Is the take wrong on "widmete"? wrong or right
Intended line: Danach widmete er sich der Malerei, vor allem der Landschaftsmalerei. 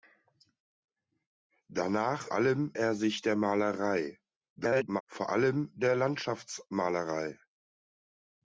wrong